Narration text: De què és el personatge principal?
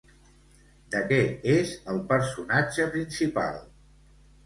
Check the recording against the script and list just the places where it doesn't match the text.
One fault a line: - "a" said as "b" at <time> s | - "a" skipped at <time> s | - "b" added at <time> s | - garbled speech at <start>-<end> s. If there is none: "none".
none